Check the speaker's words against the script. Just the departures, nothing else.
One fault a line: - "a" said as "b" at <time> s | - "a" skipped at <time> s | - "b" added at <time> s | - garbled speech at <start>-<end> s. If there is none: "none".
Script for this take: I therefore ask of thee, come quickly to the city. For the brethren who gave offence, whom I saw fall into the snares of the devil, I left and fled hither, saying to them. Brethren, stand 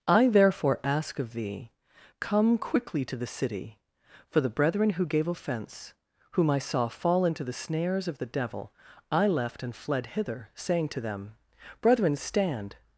none